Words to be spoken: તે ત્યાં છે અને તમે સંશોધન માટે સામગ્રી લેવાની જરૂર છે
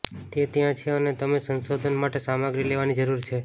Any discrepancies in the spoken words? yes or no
no